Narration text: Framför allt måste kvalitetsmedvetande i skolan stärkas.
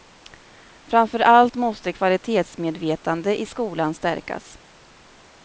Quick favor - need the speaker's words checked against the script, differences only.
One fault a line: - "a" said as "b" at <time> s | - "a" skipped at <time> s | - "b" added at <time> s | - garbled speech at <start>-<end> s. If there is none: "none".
none